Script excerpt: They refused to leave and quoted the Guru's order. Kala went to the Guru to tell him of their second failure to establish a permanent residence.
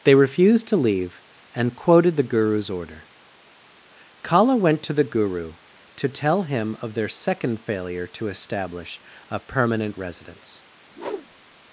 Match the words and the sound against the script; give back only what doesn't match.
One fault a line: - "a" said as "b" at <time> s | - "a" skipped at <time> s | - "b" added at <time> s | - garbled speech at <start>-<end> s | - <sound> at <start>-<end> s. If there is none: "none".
- whoosh at 10.9-11.6 s